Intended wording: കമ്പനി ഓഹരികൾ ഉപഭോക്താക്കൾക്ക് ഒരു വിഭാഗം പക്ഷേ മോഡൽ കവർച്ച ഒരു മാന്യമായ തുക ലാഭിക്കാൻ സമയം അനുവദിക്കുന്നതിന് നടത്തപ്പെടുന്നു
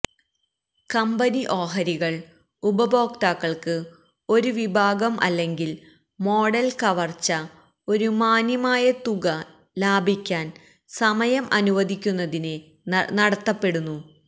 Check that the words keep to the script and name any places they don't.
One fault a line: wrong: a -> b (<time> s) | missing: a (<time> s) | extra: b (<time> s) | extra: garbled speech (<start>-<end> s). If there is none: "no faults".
wrong: പക്ഷേ -> അല്ലെങ്കിൽ (5.2 s)